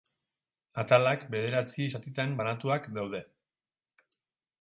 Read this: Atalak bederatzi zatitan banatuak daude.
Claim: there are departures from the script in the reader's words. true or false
false